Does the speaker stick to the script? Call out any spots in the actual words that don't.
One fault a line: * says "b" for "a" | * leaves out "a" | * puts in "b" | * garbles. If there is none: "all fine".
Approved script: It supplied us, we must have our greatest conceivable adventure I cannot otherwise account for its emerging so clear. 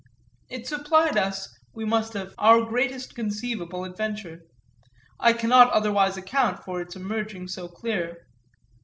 all fine